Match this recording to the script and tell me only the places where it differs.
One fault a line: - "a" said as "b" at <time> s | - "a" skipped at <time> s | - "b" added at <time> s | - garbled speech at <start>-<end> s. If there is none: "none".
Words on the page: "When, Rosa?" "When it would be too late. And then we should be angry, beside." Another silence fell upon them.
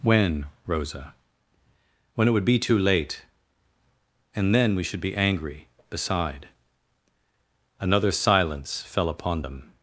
none